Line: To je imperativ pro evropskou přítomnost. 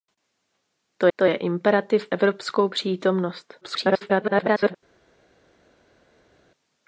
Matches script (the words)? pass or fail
fail